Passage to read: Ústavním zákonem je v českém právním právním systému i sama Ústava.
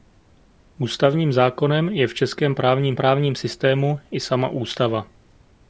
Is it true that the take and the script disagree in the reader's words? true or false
false